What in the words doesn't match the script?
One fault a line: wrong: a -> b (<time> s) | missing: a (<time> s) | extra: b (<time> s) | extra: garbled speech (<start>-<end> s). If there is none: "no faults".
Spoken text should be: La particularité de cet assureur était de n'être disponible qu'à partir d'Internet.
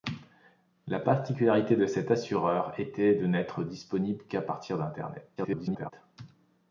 extra: garbled speech (5.4-5.9 s)